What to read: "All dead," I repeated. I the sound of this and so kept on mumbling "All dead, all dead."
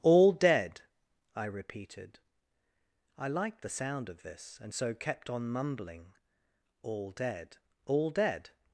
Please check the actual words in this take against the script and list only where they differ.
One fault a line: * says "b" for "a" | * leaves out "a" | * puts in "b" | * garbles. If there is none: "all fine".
* puts in "liked"